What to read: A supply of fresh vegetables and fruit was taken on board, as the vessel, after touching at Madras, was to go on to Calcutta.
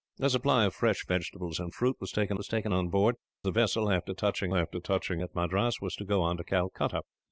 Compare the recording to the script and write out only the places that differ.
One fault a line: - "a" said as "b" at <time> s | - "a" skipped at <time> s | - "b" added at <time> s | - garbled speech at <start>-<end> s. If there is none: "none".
- "was taken" added at 2.4 s
- "as" skipped at 3.1 s
- "after touching" added at 4.5 s